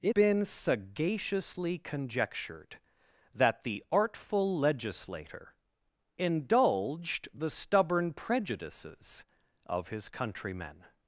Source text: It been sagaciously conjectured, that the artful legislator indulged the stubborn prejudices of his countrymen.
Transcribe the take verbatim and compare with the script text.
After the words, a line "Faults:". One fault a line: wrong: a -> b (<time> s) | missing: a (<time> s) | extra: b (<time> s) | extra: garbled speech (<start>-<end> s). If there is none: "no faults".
It been sagaciously conjectured, that the artful legislator indulged the stubborn prejudices of his countrymen.
Faults:
no faults